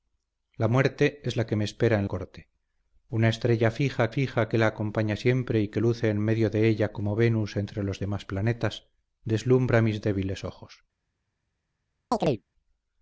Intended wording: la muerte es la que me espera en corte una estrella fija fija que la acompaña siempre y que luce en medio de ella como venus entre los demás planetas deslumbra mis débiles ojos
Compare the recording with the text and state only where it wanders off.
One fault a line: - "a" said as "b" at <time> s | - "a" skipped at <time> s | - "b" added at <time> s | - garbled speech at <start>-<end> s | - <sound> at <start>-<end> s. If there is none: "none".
- chirp at 12.1-12.4 s